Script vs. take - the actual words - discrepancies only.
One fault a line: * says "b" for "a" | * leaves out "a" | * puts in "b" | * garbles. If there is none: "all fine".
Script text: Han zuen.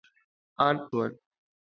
all fine